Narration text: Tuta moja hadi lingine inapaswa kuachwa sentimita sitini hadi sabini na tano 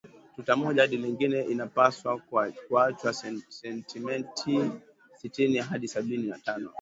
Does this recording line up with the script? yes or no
yes